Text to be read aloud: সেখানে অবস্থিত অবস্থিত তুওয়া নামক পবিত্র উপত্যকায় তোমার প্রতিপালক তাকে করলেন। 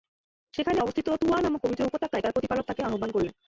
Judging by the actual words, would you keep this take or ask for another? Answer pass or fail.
fail